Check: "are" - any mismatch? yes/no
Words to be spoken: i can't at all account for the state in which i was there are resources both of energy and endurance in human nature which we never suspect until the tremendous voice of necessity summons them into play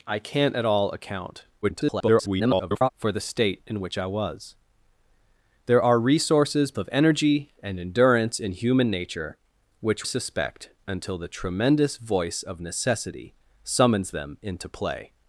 no